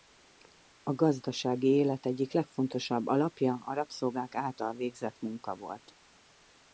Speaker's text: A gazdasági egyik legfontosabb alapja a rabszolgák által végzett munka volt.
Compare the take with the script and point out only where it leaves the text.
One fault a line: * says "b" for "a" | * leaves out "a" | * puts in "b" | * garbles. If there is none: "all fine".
* puts in "élet"